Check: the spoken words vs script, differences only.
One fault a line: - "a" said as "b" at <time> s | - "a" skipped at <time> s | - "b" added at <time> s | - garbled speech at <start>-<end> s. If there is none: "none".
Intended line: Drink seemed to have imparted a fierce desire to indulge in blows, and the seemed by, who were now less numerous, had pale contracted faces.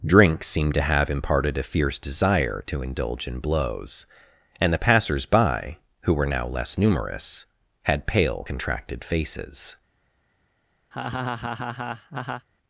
- "seemed" said as "passers" at 4.8 s